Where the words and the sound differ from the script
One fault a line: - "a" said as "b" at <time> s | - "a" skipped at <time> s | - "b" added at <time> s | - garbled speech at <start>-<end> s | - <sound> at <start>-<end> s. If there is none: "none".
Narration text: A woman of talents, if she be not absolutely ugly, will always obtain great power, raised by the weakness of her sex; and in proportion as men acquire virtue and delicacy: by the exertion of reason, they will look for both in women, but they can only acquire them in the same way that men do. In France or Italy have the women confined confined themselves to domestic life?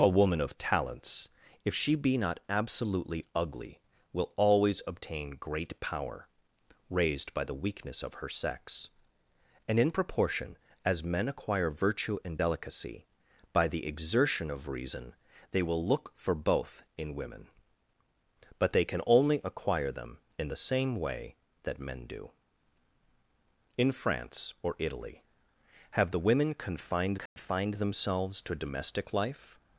- dropout at 27.3-27.4 s